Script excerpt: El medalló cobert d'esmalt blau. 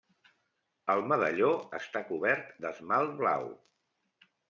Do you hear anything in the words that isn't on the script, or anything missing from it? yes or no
yes